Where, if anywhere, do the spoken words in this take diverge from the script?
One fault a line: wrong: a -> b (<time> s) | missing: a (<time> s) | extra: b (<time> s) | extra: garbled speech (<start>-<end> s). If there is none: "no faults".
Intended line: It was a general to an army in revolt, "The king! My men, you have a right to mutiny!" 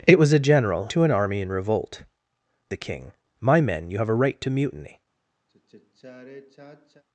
no faults